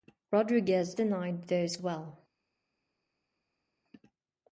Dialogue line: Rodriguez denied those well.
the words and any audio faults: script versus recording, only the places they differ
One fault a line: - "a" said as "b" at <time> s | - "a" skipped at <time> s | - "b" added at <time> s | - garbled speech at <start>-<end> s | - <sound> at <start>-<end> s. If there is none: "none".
none